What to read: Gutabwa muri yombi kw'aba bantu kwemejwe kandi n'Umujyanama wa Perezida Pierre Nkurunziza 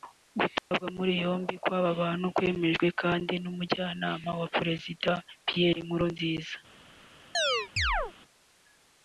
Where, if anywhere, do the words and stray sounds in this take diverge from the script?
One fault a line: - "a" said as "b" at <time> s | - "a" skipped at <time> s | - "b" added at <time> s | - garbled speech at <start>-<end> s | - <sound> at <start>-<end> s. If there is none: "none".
- dropout at 0.6-0.7 s
- chirp at 7.3-8.1 s